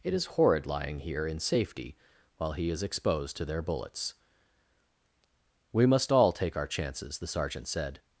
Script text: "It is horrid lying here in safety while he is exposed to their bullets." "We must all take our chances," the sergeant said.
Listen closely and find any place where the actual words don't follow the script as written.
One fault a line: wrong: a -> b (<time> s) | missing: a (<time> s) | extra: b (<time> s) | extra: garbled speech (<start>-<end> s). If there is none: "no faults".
no faults